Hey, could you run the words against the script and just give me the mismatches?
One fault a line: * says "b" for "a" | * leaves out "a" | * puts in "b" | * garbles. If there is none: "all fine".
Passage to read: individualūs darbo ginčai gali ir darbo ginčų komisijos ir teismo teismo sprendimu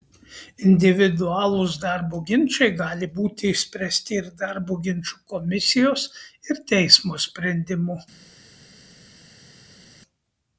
* puts in "būti išspręsti"
* leaves out "teismo"